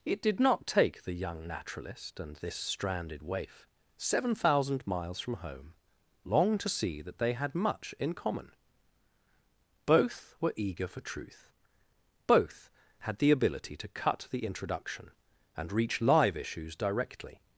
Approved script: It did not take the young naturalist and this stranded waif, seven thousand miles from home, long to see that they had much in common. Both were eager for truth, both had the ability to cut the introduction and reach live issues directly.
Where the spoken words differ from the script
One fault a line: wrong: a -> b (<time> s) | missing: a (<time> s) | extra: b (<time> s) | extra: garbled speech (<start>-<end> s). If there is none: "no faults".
no faults